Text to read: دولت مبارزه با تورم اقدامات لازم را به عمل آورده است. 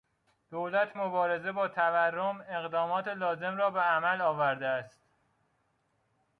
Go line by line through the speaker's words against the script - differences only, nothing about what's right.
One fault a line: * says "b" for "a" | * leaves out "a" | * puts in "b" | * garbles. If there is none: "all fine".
all fine